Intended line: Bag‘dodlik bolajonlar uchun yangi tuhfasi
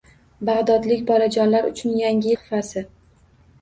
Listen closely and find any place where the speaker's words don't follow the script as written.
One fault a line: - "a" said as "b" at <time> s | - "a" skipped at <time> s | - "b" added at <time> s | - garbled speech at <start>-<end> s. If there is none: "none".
none